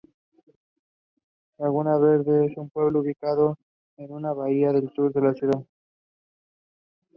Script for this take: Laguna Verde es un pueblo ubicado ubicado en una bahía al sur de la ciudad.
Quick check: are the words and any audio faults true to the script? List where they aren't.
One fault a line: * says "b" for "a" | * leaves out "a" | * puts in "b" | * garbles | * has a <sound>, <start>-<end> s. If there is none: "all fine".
* leaves out "ubicado"